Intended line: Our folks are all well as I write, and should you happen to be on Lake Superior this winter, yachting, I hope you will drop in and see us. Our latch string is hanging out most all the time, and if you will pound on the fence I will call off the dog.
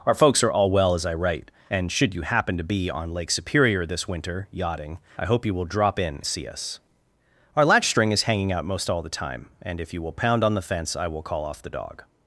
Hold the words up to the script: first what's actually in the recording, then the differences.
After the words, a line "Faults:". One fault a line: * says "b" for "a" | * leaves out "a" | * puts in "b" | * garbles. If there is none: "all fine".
Our folks are all well as I write, and should you happen to be on Lake Superior this winter, yachting, I hope you will drop in see us. Our latch string is hanging out most all the time, and if you will pound on the fence I will call off the dog.
Faults:
* leaves out "and"